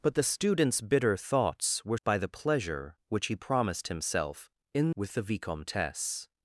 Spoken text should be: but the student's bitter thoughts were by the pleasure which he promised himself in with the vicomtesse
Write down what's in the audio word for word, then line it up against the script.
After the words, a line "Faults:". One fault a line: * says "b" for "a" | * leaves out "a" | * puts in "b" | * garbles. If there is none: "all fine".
but the student's bitter thoughts were by the pleasure which he promised himself in with the vicomtesse
Faults:
all fine